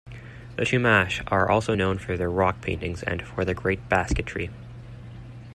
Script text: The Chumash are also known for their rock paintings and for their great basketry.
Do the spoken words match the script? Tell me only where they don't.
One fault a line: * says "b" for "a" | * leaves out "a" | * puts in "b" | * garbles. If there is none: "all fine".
all fine